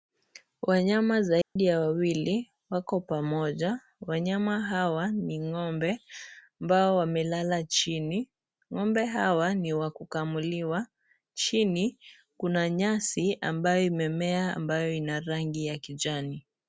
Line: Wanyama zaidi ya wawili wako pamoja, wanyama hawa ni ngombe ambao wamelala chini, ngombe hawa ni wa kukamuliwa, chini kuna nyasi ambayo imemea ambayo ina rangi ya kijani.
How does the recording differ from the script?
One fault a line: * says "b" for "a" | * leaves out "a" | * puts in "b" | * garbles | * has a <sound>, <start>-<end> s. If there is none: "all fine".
* has a dropout, 1.4-1.6 s